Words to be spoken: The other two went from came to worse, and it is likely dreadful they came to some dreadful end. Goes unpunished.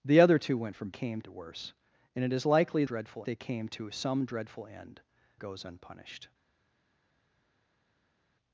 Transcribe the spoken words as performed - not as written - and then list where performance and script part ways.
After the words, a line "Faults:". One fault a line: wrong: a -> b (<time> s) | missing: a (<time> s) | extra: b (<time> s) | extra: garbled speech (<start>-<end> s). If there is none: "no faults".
The other two went from came to worse, and it is likely dreadful they came to some dreadful end. Goes unpunished.
Faults:
no faults